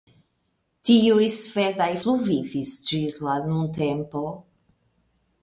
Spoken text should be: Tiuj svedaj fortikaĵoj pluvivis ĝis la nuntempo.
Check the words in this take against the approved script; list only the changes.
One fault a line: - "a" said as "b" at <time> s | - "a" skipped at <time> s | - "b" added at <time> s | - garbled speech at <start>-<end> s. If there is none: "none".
- "fortikaĵoj" skipped at 1.9 s